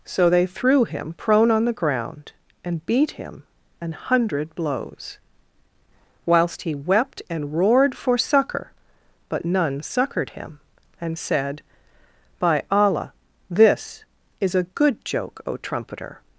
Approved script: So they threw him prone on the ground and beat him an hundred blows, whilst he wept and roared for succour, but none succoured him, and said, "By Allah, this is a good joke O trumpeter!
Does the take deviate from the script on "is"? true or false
false